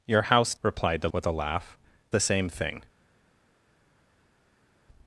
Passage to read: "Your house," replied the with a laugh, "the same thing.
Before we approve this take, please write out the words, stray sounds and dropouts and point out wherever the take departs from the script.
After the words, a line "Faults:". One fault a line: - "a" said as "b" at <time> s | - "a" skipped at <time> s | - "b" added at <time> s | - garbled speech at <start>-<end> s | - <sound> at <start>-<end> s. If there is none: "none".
"Your house," replied the with a laugh, "the same thing.
Faults:
none